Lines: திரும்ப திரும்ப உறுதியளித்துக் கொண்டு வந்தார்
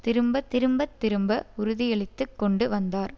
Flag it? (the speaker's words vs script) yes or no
yes